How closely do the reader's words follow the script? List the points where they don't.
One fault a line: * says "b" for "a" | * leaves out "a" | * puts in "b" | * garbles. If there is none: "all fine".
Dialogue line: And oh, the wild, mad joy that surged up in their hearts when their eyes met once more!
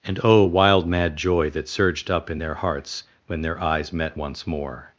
* leaves out "the"